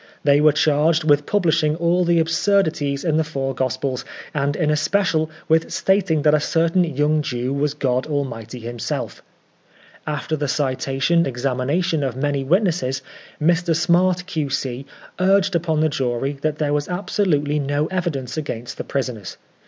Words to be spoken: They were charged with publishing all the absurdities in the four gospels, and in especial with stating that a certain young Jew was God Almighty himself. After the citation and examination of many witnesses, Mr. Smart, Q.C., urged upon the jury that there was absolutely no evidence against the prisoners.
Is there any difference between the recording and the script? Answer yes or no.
yes